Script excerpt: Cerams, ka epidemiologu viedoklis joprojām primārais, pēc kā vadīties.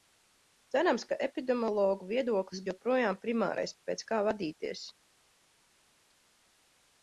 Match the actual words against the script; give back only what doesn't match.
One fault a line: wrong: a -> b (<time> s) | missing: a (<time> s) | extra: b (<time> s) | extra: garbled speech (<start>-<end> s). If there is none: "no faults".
no faults